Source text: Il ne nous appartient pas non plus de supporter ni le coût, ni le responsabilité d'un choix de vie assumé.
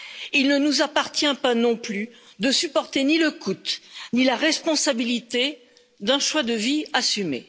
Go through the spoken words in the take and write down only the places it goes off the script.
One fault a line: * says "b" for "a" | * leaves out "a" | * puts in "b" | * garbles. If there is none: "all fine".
* says "la" for "le"